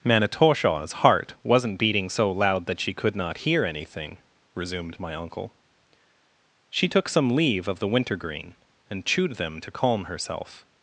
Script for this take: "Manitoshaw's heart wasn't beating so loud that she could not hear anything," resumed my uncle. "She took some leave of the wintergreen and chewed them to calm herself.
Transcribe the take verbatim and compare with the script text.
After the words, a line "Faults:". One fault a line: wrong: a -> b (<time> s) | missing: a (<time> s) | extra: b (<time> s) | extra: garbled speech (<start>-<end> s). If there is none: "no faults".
"Manitoshaw's heart wasn't beating so loud that she could not hear anything," resumed my uncle. "She took some leave of the wintergreen and chewed them to calm herself.
Faults:
no faults